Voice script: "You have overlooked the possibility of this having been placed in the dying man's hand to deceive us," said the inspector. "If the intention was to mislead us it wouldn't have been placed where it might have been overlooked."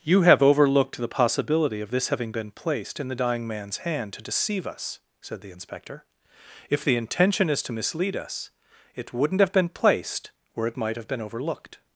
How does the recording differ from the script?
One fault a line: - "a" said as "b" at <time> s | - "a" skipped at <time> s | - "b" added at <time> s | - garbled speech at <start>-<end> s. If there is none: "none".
- "was" said as "is" at 7.5 s